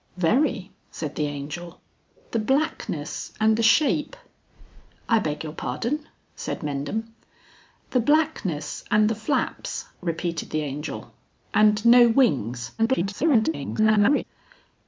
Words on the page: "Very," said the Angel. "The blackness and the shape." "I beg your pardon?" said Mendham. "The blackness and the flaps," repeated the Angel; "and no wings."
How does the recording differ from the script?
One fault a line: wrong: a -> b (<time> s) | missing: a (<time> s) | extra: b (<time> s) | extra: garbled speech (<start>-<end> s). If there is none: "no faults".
extra: garbled speech (12.8-14.2 s)